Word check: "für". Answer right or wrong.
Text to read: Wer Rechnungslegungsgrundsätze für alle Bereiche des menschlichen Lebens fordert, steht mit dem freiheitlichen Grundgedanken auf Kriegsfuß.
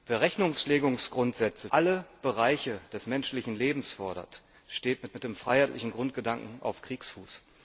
wrong